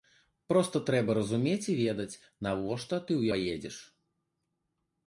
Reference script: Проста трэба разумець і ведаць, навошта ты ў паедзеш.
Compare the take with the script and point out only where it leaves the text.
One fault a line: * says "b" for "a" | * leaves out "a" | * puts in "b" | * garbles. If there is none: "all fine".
all fine